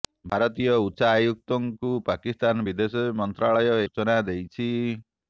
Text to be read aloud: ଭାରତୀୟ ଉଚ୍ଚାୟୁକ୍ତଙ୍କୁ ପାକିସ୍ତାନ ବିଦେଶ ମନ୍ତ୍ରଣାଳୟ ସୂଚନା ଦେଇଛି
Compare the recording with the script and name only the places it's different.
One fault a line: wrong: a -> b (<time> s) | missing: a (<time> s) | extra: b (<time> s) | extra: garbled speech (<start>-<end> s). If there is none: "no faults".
no faults